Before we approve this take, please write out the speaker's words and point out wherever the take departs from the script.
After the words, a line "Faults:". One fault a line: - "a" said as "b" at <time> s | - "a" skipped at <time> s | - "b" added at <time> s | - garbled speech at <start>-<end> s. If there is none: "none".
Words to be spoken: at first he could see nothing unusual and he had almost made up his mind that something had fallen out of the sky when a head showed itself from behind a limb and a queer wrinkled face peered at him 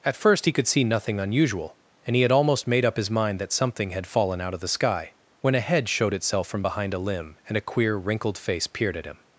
at first he could see nothing unusual and he had almost made up his mind that something had fallen out of the sky when a head showed itself from behind a limb and a queer wrinkled face peered at him
Faults:
none